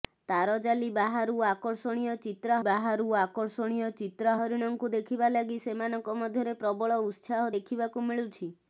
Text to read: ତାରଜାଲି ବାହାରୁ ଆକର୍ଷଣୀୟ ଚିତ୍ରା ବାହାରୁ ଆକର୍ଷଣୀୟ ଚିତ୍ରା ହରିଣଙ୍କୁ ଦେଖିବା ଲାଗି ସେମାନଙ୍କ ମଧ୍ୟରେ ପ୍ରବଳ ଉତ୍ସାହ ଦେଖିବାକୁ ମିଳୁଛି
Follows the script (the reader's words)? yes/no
yes